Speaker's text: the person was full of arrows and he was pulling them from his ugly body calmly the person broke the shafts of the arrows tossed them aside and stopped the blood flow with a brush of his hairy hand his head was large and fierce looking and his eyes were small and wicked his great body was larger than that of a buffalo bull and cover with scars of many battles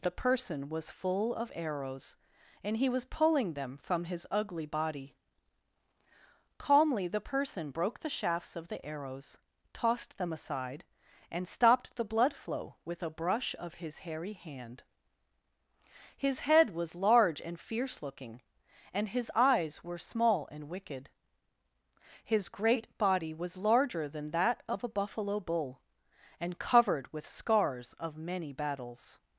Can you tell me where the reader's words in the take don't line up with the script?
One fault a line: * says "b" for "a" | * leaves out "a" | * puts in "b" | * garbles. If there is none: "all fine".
* says "covered" for "cover"